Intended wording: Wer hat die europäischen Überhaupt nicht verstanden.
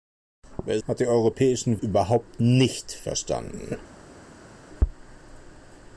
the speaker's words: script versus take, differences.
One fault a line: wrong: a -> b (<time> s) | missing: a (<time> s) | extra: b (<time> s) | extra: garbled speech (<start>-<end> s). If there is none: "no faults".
no faults